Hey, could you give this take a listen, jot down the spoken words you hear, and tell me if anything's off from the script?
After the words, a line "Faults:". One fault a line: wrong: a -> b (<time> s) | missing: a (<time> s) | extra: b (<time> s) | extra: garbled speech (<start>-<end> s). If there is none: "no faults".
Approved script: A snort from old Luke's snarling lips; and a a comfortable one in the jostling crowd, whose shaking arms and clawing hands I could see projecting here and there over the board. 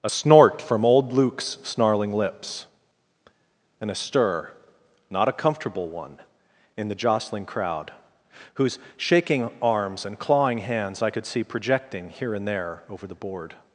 A snort from old Luke's snarling lips; and a stir not a comfortable one in the jostling crowd, whose shaking arms and clawing hands I could see projecting here and there over the board.
Faults:
extra: stir not (3.9 s)